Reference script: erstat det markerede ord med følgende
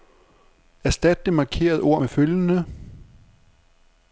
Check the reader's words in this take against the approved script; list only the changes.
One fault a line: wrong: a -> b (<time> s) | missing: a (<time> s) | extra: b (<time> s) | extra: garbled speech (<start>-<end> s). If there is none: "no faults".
no faults